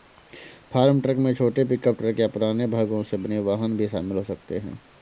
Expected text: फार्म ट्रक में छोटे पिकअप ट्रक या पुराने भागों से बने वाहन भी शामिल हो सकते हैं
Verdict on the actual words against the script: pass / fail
pass